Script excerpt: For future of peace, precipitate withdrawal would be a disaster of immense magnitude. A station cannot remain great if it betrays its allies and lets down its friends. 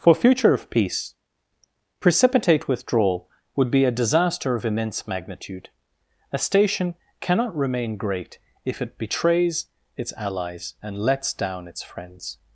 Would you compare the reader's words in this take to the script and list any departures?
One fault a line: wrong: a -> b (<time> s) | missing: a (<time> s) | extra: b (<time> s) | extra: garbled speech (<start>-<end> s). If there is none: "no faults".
no faults